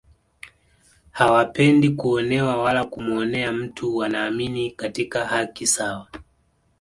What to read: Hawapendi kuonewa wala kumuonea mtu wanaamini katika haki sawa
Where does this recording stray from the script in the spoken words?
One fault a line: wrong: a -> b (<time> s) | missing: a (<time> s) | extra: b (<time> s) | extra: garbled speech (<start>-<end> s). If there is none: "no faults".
no faults